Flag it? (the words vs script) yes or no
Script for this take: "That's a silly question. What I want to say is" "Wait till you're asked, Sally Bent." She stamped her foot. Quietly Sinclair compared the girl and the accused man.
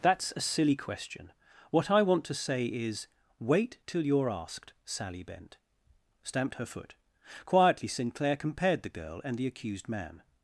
yes